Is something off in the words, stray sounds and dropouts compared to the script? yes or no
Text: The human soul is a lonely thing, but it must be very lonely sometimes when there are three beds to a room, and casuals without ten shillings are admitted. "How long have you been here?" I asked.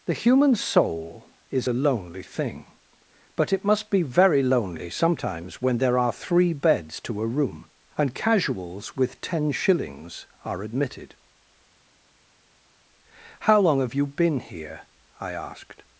yes